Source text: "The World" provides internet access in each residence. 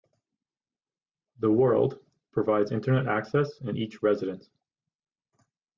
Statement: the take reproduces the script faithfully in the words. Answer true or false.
true